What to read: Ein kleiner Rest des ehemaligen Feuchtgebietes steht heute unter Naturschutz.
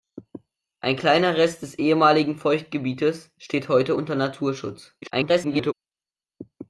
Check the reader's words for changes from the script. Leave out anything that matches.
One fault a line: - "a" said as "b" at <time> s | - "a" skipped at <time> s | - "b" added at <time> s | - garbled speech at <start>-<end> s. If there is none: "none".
- garbled speech at 5.0-5.7 s